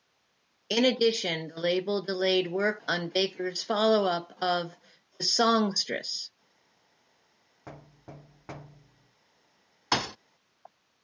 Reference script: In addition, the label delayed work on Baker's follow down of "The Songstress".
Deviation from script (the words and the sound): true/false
true